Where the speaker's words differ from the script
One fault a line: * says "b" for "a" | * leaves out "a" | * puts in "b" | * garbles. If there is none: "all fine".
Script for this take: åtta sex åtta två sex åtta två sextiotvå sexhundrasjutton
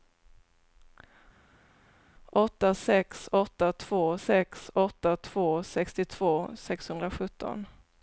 all fine